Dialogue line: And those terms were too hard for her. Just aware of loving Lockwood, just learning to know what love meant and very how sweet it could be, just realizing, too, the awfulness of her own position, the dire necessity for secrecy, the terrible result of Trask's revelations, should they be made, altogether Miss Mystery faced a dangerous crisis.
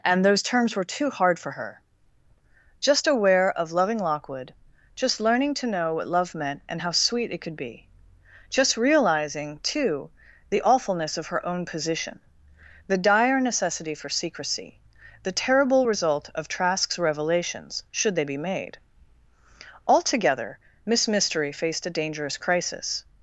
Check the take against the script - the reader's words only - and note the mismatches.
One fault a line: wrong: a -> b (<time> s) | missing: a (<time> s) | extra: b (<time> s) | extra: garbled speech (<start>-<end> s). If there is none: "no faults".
missing: very (6.8 s)